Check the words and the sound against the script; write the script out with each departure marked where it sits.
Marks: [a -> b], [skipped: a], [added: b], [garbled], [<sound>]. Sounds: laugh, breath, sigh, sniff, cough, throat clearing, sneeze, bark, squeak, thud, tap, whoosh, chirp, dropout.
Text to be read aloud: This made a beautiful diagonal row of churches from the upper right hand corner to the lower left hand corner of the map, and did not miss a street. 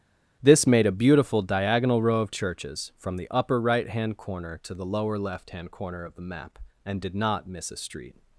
This made a beautiful diagonal row of churches from the upper right hand corner to the lower left hand corner of the map, and did not miss a street.